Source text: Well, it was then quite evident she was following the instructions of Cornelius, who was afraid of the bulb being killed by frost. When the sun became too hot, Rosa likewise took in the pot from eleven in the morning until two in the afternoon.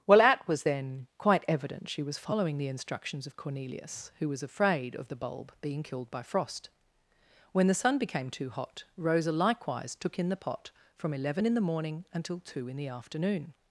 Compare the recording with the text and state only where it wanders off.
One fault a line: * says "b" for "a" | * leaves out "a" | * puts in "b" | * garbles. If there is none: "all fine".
* says "at" for "it"